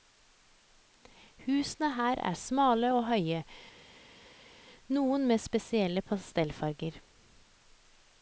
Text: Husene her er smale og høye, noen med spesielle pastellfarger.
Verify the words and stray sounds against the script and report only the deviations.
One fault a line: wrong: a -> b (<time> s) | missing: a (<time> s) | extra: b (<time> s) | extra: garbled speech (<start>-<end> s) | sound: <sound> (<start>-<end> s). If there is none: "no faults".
no faults